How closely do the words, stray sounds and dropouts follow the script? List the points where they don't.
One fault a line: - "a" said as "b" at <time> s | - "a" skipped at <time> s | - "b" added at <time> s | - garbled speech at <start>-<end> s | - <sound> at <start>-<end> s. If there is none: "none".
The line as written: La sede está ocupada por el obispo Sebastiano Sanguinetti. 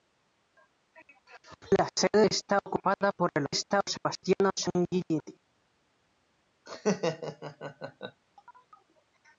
- "obispo" said as "está" at 3.5 s
- laugh at 6.7-8.2 s